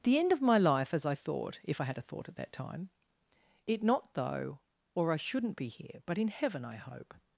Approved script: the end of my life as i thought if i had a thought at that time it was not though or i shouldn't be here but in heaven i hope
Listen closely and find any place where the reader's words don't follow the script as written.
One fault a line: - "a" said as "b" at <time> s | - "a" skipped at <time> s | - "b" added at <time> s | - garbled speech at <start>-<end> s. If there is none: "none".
- "was" skipped at 3.8 s